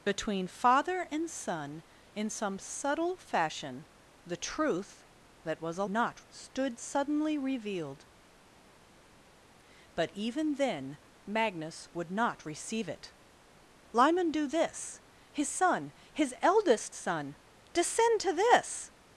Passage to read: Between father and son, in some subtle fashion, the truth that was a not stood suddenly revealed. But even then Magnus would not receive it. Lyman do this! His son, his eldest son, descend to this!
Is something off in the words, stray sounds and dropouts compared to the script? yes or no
no